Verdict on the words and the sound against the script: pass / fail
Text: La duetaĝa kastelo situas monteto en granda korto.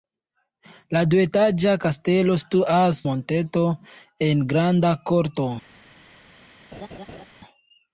fail